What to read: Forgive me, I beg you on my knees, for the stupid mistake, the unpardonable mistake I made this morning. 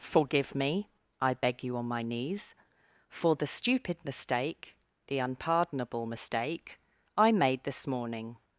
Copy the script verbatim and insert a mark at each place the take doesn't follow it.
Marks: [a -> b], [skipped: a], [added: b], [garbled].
Forgive me, I beg you on my knees, for the stupid mistake, the unpardonable mistake I made this morning.